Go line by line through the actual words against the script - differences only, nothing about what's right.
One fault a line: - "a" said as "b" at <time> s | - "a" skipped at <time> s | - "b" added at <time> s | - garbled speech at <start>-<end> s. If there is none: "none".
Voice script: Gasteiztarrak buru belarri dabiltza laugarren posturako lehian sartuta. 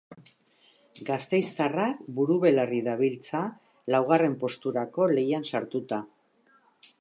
none